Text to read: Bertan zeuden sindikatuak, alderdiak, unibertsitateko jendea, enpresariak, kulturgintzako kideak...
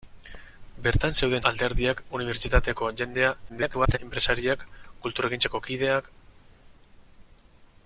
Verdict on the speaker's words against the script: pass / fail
fail